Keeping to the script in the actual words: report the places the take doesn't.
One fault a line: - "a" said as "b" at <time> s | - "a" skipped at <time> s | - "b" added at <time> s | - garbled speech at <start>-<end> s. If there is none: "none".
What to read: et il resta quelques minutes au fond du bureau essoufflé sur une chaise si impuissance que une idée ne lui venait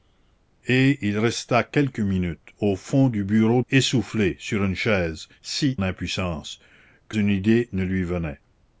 none